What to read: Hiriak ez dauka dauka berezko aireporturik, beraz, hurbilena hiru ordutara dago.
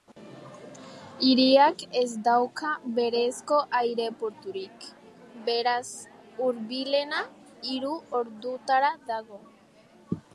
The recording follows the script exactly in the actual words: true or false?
false